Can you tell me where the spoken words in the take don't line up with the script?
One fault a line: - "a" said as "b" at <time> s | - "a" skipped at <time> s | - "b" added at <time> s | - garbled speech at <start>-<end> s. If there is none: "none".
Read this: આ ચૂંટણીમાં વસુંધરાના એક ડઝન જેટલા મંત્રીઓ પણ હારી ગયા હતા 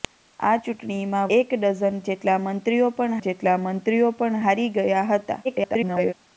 - "વસુંધરાના" skipped at 1.2 s
- "જેટલા મંત્રીઓ પણ" added at 3.2 s
- garbled speech at 5.4-6.1 s